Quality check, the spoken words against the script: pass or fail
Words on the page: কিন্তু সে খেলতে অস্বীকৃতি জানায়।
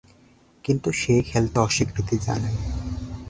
pass